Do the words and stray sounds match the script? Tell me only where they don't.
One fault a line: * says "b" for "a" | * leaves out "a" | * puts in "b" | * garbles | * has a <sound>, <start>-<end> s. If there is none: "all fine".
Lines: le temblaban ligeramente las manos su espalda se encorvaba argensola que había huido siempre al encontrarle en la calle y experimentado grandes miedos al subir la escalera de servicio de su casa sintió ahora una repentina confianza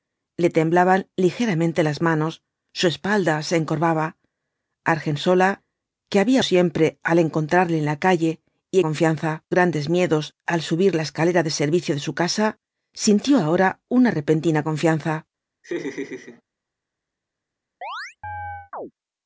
* leaves out "huido"
* says "confianza" for "experimentado"
* has a laugh, 15.6-16.4 s
* has a chirp, 17.8-18.9 s